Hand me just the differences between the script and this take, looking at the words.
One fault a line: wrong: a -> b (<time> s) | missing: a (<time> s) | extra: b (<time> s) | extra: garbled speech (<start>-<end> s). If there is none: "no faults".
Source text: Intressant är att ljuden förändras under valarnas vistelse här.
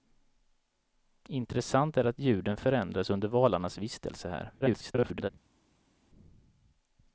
extra: garbled speech (4.6-5.3 s)